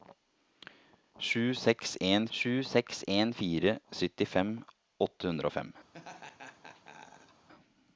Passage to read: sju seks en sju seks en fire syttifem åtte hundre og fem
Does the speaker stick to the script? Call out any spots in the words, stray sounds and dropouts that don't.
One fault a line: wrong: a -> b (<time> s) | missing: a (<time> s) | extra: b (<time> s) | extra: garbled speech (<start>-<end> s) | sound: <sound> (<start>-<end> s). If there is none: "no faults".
sound: laugh (5.9-7.5 s)